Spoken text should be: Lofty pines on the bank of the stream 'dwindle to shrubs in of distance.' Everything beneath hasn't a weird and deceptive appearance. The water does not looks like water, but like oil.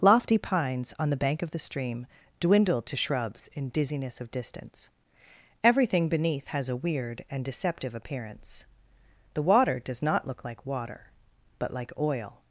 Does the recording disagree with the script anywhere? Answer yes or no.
yes